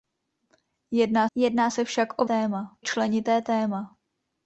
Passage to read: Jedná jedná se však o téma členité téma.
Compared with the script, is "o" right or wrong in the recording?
right